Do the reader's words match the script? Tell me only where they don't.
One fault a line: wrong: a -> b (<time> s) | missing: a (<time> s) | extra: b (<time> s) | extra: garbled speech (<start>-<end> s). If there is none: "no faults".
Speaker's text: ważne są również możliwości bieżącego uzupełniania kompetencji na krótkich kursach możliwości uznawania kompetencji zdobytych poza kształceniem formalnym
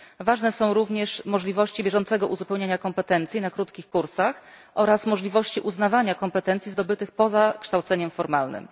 extra: oraz (4.8 s)